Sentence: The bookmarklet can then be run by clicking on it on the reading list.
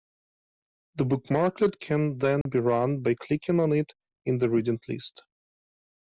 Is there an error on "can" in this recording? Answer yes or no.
no